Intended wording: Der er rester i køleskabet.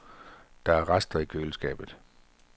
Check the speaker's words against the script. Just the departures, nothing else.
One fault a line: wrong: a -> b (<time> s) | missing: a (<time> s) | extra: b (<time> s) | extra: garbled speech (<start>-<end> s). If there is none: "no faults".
no faults